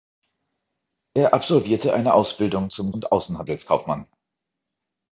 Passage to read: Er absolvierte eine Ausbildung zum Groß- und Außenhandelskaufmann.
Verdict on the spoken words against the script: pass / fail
fail